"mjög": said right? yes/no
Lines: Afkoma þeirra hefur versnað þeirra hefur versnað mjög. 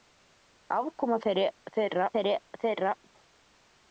yes